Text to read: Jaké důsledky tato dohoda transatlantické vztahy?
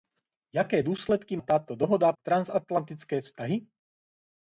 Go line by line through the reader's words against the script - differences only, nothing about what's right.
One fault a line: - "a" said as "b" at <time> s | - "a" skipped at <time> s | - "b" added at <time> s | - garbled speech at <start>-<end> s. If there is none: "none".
none